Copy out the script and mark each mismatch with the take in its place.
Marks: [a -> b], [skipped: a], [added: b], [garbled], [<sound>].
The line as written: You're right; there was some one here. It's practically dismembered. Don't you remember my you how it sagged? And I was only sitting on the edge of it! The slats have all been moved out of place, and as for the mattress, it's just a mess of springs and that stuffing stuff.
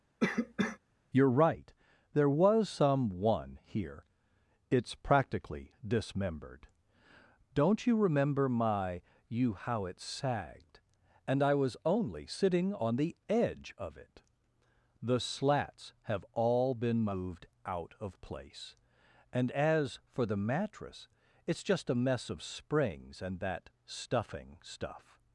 [cough] You're right; there was some one here. It's practically dismembered. Don't you remember my you how it sagged? And I was only sitting on the edge of it! The slats have all been moved out of place, and as for the mattress, it's just a mess of springs and that stuffing stuff.